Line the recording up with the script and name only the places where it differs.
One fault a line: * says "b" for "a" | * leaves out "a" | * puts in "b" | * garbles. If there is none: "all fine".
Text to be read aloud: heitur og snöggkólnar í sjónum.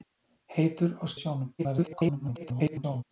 * leaves out "snöggkólnar"
* garbles